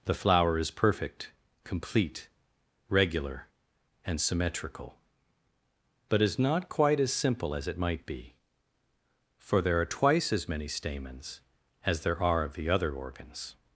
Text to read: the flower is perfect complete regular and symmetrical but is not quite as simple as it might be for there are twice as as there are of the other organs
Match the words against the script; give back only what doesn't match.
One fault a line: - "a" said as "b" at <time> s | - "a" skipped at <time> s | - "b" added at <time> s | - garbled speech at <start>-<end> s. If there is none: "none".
- "many stamens" added at 10.5 s